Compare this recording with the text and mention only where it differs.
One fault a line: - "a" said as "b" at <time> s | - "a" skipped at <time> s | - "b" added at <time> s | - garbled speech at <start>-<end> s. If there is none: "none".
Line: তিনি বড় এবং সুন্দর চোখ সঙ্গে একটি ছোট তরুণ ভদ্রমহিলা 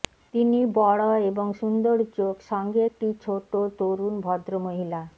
none